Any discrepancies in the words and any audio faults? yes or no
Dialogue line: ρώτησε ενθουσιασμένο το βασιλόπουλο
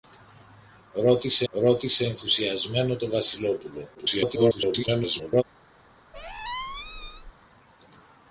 yes